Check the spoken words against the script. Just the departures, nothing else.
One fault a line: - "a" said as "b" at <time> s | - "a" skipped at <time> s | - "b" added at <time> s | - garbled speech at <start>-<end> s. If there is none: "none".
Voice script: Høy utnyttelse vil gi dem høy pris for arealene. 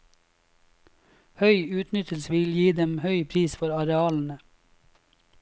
none